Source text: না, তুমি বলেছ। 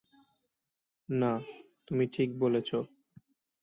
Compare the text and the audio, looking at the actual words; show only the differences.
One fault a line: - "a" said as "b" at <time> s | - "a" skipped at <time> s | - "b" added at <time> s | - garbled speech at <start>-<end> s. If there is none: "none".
- "ঠিক" added at 2.1 s